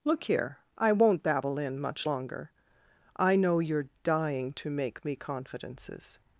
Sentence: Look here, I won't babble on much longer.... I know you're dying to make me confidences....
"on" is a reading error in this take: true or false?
true